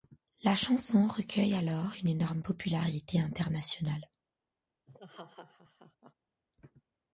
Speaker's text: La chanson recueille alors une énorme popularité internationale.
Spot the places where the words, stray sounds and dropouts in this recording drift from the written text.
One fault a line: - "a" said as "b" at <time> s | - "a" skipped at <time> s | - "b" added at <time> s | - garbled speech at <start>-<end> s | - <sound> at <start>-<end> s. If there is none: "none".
- laugh at 4.9-6.1 s